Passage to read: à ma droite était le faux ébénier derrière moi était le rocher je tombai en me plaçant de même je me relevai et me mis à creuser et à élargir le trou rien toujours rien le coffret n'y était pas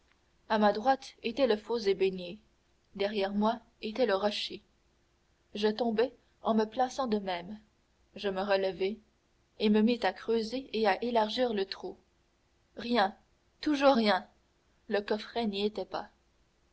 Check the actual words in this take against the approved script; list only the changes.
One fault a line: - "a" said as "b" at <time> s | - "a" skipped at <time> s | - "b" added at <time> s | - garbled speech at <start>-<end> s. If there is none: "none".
none